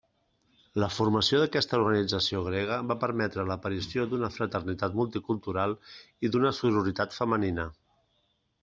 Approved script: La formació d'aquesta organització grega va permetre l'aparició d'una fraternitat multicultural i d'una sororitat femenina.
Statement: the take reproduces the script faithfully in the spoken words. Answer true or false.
true